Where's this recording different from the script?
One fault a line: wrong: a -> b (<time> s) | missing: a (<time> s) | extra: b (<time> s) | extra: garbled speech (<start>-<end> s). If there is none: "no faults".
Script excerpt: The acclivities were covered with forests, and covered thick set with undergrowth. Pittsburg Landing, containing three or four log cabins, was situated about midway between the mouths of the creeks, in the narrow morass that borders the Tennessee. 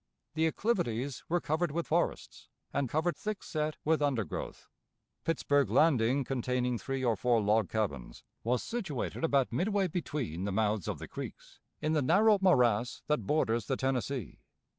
no faults